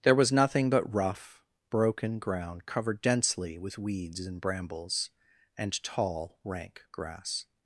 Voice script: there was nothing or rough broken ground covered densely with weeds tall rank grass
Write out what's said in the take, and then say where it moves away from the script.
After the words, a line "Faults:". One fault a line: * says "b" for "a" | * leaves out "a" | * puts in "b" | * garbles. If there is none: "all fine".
there was nothing but rough broken ground covered densely with weeds and brambles and tall rank grass
Faults:
* says "but" for "or"
* puts in "and brambles and"